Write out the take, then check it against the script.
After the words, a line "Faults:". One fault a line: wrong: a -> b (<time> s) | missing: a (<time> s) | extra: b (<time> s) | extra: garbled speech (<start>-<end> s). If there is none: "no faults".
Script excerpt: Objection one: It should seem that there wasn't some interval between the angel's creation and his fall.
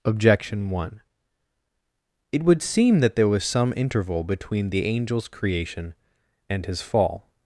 Objection one: It would seem that there was some interval between the angel's creation and his fall.
Faults:
wrong: should -> would (2.4 s)
wrong: wasn't -> was (3.3 s)